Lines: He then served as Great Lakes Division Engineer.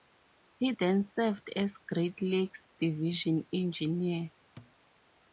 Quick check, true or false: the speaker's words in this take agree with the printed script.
true